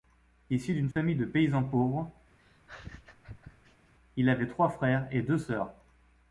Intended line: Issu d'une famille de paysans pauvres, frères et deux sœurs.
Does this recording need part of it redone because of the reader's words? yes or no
yes